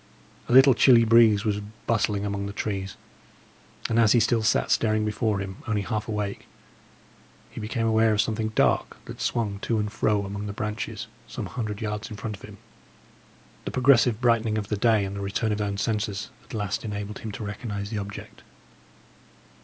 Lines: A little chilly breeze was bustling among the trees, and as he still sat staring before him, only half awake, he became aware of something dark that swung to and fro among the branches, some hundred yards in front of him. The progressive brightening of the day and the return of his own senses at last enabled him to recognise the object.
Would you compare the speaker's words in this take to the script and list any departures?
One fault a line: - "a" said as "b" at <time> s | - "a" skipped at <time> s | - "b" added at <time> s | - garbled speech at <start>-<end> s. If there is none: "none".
- "his" skipped at 15.6 s